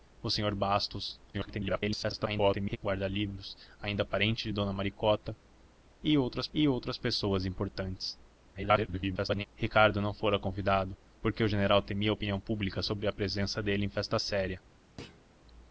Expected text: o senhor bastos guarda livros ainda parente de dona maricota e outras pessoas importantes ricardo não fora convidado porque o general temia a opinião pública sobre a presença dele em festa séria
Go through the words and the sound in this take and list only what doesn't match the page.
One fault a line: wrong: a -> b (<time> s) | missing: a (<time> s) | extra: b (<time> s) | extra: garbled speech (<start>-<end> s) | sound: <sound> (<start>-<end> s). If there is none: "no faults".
extra: garbled speech (1.3-2.8 s)
extra: e outras (6.5 s)
extra: garbled speech (8.5-9.5 s)
sound: thud (15.0-15.3 s)